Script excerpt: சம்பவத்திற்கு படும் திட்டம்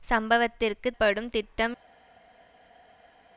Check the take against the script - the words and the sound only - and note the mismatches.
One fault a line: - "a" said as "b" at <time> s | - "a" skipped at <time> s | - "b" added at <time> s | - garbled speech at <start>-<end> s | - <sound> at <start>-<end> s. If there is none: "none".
none